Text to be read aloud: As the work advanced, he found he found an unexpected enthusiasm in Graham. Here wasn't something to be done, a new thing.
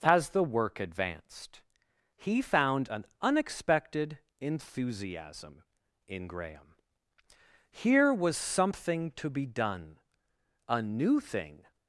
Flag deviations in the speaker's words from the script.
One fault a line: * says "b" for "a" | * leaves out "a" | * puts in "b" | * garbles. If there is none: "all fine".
* leaves out "he found"
* says "was" for "wasn't"